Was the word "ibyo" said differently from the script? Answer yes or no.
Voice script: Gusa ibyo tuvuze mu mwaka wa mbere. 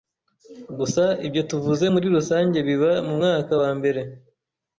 no